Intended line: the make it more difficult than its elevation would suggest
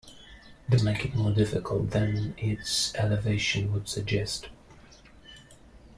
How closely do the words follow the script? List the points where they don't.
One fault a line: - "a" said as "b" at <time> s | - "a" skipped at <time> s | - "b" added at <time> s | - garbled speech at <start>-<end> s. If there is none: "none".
none